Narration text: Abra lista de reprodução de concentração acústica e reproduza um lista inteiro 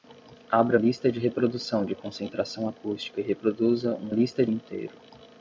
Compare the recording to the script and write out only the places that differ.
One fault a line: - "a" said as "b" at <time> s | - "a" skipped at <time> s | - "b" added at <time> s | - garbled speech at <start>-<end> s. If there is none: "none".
none